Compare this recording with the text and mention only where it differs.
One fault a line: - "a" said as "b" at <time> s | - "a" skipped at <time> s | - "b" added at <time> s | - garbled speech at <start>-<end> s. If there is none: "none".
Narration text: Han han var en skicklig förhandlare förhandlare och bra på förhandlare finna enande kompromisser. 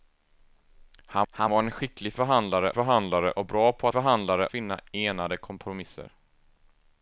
none